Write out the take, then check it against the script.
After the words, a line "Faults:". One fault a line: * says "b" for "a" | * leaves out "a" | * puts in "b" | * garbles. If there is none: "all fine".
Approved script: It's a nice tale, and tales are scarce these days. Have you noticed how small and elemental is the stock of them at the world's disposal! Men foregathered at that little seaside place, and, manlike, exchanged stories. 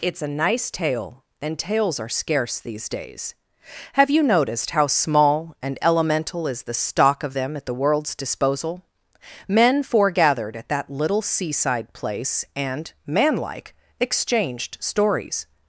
It's a nice tale, and tales are scarce these days. Have you noticed how small and elemental is the stock of them at the world's disposal! Men foregathered at that little seaside place, and, manlike, exchanged stories.
Faults:
all fine